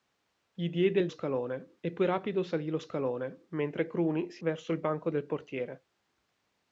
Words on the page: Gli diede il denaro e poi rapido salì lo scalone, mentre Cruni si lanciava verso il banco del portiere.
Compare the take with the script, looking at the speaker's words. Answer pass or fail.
fail